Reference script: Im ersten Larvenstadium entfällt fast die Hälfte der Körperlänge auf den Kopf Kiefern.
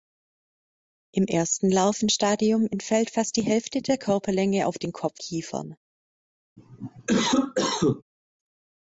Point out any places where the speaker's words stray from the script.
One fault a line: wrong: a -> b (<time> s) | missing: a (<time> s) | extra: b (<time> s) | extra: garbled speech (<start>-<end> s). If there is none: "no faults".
no faults